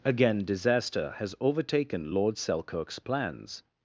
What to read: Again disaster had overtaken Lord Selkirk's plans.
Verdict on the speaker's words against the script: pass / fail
fail